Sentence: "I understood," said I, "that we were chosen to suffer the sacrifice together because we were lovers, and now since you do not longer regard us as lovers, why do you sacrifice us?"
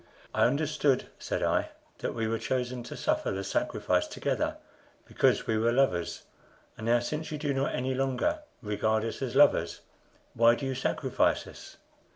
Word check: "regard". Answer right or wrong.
right